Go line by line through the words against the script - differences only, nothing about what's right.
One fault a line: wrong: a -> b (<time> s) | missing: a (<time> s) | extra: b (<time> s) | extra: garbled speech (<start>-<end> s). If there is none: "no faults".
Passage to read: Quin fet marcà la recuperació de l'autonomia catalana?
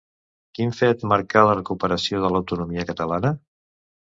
no faults